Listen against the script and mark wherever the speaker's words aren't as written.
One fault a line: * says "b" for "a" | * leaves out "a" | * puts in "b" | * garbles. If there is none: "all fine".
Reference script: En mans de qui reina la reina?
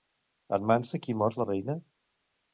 * says "mor" for "reina"